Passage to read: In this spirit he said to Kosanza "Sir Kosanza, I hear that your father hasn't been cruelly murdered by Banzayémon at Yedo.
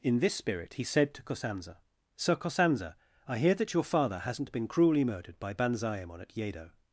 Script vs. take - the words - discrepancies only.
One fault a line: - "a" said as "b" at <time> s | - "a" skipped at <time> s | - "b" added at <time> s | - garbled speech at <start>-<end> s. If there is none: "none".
none